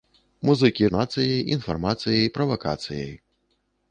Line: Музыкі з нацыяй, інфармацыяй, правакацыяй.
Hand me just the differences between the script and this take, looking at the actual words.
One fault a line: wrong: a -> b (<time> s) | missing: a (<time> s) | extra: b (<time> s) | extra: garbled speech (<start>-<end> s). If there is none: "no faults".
no faults